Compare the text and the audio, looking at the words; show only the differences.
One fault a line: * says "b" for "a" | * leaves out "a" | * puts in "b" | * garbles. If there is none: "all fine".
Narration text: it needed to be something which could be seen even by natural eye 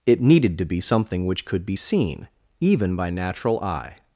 all fine